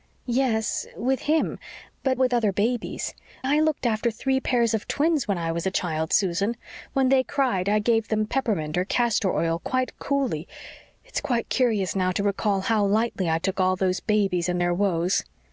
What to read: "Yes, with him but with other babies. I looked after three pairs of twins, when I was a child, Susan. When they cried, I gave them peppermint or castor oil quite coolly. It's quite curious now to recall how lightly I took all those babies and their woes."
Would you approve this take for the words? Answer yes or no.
yes